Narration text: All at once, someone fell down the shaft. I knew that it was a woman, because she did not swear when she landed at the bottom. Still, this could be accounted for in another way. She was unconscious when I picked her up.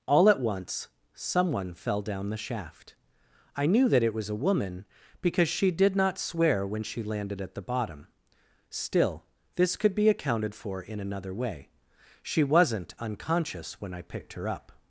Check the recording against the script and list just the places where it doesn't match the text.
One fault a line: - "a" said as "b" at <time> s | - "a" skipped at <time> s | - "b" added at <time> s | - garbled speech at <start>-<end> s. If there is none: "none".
- "was" said as "wasn't" at 12.4 s